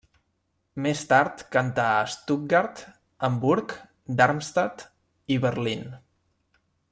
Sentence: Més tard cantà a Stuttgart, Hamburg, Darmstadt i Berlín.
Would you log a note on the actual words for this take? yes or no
no